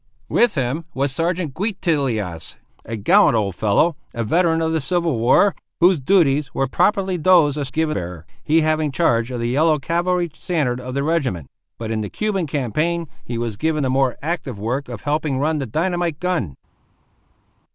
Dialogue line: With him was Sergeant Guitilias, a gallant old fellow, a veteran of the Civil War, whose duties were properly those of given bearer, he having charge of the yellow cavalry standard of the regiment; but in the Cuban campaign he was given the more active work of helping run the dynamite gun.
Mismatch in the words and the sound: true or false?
false